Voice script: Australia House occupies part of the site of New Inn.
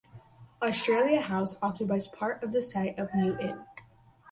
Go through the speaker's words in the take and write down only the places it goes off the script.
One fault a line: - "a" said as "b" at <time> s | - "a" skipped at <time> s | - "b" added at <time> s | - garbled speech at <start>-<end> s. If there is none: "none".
none